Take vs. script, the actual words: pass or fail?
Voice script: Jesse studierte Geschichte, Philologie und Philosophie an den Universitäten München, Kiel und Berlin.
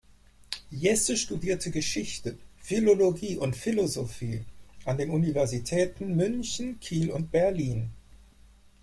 pass